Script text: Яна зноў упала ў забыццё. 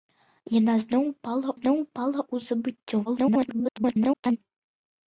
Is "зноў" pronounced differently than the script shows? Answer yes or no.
no